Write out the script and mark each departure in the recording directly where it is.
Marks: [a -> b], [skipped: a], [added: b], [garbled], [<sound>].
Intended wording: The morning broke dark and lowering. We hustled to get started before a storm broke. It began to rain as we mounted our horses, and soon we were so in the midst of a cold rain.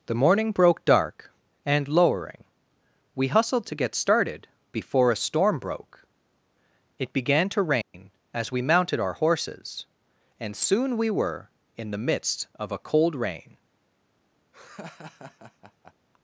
The morning broke dark and lowering. We hustled to get started before a storm broke. It began to rain [dropout] as we mounted our horses, and soon we were [skipped: so] in the midst of a cold rain. [laugh]